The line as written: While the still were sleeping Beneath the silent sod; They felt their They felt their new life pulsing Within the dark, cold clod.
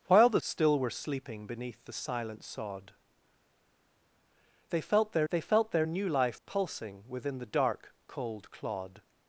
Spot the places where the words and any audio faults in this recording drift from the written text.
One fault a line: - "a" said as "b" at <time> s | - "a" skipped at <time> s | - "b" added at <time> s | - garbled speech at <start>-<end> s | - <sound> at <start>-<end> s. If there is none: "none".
none